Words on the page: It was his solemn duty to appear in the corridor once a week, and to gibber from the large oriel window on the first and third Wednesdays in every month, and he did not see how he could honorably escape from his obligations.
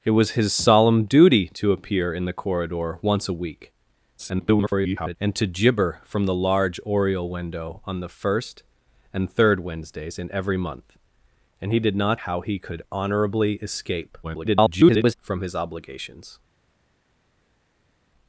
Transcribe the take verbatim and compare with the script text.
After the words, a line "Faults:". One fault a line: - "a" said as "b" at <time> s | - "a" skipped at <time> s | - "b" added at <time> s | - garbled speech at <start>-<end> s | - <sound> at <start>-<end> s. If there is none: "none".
It was his solemn duty to appear in the corridor once a week, [garbled] and to gibber from the large oriel window on the first and third Wednesdays in every month, and he did not how he could honorably escape [garbled] from his obligations.
Faults:
- garbled speech at 4.2-5.2 s
- "see" skipped at 12.2 s
- garbled speech at 14.2-15.1 s